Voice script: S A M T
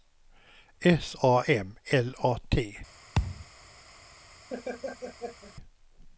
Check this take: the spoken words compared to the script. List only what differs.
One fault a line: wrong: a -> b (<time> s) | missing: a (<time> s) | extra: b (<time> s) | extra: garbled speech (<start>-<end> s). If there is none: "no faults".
extra: L A (1.9 s)